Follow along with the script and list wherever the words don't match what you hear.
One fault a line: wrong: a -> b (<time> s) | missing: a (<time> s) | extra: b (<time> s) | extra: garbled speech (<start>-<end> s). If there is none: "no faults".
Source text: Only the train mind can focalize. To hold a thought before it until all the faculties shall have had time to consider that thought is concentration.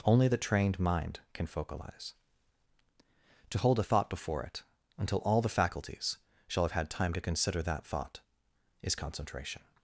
wrong: train -> trained (0.4 s)